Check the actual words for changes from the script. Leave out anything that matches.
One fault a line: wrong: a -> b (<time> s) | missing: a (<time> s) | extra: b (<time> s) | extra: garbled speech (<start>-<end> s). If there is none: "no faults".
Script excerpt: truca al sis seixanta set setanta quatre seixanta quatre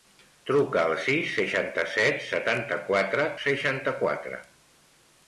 no faults